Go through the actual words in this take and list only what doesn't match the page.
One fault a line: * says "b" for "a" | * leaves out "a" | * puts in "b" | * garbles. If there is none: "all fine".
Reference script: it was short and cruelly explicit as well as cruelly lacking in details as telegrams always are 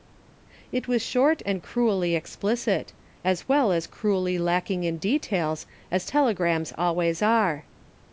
all fine